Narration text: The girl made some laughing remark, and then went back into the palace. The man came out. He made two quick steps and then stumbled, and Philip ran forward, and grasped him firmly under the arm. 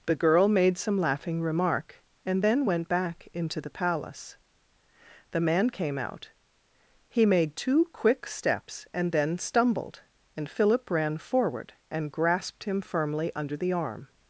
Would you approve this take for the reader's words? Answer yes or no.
yes